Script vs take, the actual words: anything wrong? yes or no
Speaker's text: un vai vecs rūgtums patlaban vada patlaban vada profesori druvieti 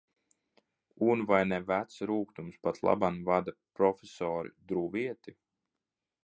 yes